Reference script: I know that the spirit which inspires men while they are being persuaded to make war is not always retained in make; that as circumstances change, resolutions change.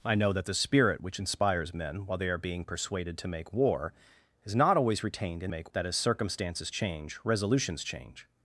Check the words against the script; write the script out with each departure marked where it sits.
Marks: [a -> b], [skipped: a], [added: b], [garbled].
I know that the spirit which inspires men while they are being persuaded to make war is not always retained in make; that as circumstances change, resolutions change.